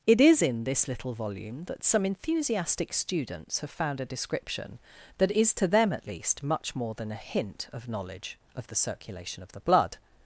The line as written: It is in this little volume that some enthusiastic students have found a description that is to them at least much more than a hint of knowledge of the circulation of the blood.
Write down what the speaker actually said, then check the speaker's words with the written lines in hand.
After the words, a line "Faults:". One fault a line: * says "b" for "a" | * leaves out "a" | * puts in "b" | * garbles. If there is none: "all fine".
It is in this little volume that some enthusiastic students have found a description that is to them at least much more than a hint of knowledge of the circulation of the blood.
Faults:
all fine